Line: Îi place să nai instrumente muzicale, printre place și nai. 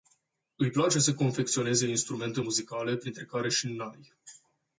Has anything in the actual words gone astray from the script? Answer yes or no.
yes